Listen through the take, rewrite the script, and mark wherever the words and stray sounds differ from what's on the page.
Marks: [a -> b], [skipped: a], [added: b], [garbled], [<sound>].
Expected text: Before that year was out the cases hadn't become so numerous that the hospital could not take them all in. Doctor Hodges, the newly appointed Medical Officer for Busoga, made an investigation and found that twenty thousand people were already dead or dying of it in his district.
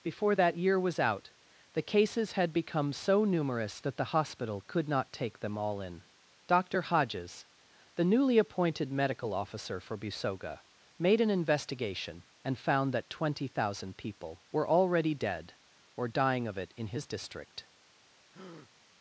Before that year was out the cases [hadn't -> had] become so numerous that the hospital could not take them all in. Doctor Hodges, the newly appointed Medical Officer for Busoga, made an investigation and found that twenty thousand people were already dead or dying of it in his district. [breath]